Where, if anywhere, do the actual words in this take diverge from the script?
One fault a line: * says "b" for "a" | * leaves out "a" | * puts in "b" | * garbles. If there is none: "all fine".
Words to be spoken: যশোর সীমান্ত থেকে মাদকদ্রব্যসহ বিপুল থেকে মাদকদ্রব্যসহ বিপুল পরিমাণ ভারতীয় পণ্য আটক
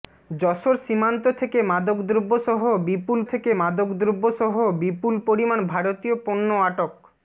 all fine